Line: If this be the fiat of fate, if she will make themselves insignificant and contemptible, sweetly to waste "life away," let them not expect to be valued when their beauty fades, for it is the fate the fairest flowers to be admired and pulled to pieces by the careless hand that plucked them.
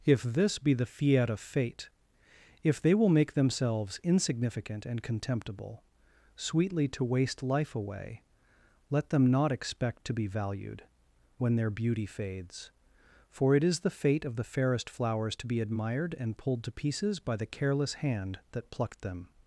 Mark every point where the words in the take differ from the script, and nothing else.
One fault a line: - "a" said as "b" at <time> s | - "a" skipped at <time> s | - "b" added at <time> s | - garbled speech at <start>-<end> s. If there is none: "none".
- "she" said as "they" at 2.8 s
- "of" added at 14.2 s